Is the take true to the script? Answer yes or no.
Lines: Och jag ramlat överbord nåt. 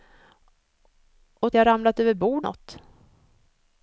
yes